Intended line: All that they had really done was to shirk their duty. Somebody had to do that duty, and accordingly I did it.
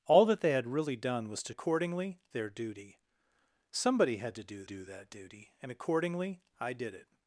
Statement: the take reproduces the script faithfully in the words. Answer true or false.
false